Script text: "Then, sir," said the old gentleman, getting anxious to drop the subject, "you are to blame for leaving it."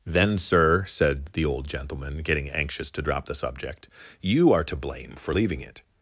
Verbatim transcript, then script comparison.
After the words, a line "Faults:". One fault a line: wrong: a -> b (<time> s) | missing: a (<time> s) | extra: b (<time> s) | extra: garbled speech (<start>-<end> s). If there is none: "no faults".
"Then, sir," said the old gentleman, getting anxious to drop the subject, "you are to blame for leaving it."
Faults:
no faults